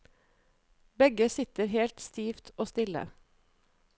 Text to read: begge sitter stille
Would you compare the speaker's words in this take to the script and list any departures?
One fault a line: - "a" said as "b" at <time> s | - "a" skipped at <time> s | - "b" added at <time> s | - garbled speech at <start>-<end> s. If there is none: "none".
- "helt stivt og" added at 1.6 s